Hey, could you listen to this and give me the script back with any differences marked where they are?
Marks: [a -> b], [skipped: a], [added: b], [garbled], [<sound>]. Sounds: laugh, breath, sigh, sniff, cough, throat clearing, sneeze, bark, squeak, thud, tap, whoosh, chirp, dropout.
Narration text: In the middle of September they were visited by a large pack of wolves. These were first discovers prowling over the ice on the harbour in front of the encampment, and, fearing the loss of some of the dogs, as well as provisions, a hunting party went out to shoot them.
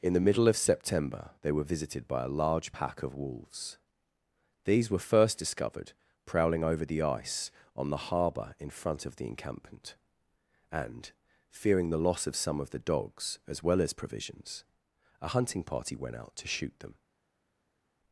In the middle of September they were visited by a large pack of wolves. These were first [discovers -> discovered] prowling over the ice on the harbour in front of the encampment, and, fearing the loss of some of the dogs, as well as provisions, a hunting party went out to shoot them.